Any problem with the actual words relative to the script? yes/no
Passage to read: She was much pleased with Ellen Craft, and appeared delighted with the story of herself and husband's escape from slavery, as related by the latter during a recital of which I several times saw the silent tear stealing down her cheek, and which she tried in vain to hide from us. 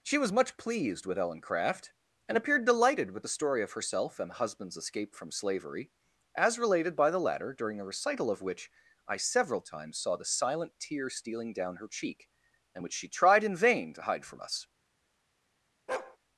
no